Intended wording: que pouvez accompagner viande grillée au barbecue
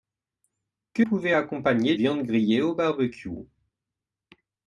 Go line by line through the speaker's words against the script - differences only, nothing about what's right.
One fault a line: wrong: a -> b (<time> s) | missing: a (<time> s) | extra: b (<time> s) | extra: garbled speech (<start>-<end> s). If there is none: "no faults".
no faults